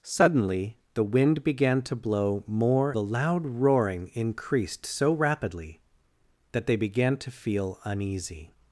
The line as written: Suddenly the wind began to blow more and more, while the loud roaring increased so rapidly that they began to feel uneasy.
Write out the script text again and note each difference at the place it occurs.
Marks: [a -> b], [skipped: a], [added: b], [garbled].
Suddenly the wind began to blow more [skipped: and more, while] the loud roaring increased so rapidly that they began to feel uneasy.